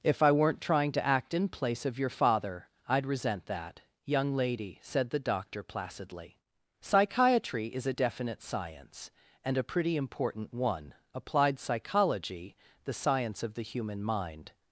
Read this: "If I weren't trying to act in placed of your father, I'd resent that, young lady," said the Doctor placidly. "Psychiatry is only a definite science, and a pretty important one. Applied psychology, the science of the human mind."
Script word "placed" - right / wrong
wrong